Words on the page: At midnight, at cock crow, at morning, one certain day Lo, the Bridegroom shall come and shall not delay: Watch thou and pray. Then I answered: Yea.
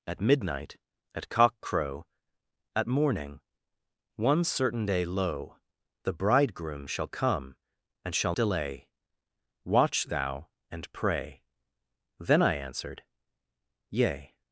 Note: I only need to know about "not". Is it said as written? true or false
false